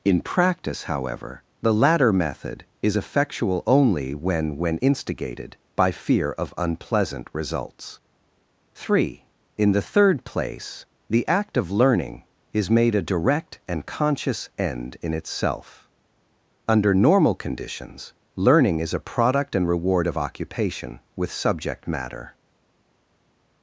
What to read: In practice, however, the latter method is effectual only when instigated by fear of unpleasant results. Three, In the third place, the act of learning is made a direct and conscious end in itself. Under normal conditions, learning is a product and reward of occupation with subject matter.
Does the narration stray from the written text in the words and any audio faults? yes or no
yes